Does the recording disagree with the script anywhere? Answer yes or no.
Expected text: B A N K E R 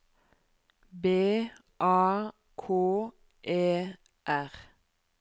yes